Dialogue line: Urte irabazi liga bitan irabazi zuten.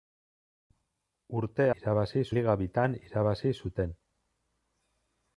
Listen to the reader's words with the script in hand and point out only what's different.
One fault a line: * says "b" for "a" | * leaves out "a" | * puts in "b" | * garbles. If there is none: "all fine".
all fine